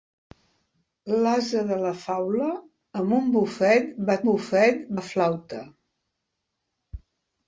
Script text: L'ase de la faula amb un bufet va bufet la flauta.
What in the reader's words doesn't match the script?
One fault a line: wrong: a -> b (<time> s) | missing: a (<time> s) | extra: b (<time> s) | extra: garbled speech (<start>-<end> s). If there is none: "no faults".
no faults